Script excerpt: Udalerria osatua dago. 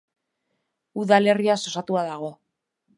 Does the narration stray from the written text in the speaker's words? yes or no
no